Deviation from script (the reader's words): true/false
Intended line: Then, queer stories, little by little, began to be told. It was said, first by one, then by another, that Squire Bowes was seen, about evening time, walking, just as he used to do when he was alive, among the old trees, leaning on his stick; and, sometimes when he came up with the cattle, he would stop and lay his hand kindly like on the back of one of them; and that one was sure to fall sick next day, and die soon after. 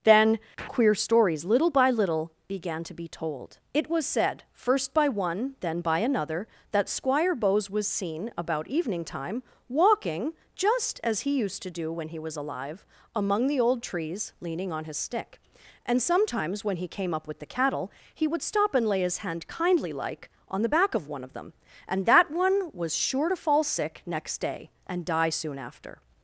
false